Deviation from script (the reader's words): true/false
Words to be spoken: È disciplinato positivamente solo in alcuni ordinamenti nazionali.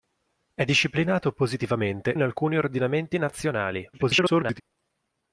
true